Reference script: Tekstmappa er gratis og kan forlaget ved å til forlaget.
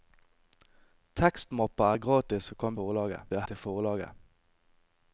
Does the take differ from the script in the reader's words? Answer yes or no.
no